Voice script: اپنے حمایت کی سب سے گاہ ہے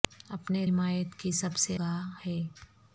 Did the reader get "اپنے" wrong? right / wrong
right